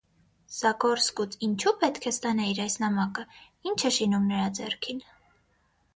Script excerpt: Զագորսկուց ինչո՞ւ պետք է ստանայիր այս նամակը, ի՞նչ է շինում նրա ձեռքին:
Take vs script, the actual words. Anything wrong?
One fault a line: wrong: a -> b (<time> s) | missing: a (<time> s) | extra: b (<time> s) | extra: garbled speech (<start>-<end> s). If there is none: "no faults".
no faults